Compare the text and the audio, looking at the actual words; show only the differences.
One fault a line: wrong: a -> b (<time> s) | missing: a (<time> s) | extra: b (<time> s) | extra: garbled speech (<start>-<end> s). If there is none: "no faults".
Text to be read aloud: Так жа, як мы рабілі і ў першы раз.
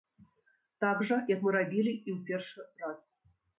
no faults